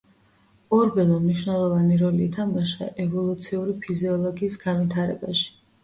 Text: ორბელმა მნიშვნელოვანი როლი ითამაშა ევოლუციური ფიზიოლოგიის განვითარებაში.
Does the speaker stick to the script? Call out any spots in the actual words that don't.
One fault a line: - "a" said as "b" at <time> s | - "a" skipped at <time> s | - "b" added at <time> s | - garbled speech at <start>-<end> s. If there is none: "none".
none